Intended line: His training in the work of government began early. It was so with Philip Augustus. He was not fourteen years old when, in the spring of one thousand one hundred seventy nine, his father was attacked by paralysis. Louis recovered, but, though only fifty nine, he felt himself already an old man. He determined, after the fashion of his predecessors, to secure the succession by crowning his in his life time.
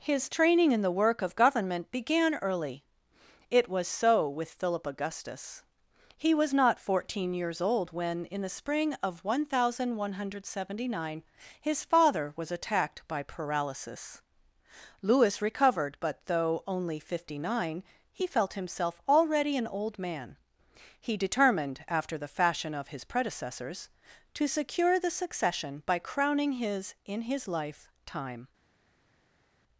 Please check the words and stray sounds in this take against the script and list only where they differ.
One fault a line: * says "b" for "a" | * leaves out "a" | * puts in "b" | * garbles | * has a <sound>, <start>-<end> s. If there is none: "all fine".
all fine